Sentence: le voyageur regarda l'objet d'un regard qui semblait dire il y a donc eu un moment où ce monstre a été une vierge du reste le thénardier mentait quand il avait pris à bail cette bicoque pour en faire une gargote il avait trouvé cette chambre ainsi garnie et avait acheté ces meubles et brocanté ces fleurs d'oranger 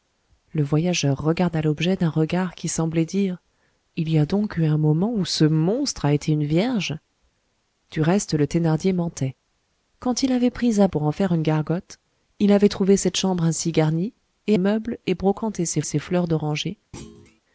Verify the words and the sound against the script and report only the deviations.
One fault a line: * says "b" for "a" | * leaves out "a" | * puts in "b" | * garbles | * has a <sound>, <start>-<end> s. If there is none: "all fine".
* leaves out "bail cette bicoque"
* leaves out "avait acheté ces"
* puts in "ces"
* has a thud, 16.9-17.4 s